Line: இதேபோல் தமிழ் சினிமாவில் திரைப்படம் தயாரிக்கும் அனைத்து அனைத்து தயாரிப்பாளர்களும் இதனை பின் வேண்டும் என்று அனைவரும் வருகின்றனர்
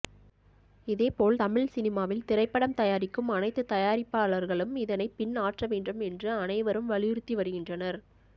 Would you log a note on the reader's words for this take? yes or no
yes